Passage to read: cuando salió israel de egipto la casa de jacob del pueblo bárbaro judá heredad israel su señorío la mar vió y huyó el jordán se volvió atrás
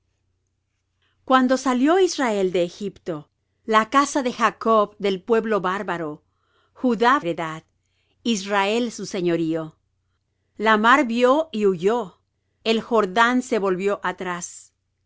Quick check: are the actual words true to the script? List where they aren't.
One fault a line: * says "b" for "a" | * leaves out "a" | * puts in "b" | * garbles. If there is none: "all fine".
all fine